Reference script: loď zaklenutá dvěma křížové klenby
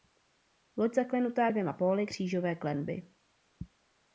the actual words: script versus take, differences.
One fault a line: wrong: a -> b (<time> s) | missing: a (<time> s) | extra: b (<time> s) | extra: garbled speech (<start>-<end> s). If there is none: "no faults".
extra: póly (1.7 s)